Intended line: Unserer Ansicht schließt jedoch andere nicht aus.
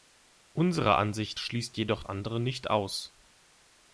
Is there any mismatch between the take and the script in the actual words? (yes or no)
no